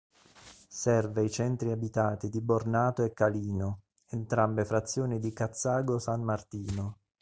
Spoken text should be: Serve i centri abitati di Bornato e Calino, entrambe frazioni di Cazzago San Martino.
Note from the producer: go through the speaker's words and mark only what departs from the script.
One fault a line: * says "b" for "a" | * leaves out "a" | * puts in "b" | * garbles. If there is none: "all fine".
all fine